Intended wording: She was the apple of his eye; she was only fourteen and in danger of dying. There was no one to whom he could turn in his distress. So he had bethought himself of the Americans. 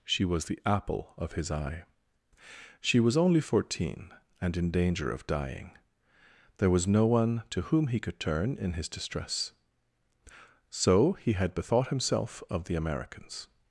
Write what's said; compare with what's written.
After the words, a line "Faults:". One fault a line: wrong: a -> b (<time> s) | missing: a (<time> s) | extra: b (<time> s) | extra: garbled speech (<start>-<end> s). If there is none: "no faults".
She was the apple of his eye; she was only fourteen and in danger of dying. There was no one to whom he could turn in his distress. So he had bethought himself of the Americans.
Faults:
no faults